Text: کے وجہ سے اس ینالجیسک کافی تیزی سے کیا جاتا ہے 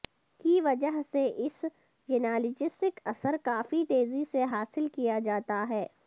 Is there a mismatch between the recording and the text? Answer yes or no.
yes